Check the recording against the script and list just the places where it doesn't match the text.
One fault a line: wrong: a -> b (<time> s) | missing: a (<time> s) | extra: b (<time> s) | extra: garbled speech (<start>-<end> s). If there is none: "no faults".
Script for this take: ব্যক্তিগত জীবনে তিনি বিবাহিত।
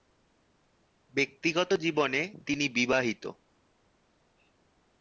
no faults